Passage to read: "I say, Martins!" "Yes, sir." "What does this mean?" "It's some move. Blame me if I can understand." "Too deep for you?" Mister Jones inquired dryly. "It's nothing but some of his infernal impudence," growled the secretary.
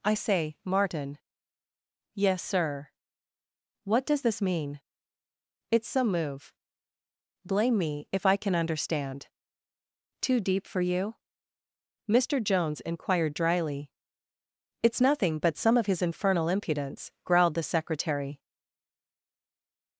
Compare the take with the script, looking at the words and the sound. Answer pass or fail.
fail